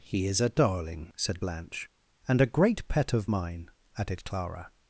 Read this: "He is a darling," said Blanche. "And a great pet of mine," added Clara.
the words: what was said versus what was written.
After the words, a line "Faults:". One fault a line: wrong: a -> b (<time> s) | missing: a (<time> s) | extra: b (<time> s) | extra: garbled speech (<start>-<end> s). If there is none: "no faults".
"He is a darling," said Blanche. "And a great pet of mine," added Clara.
Faults:
no faults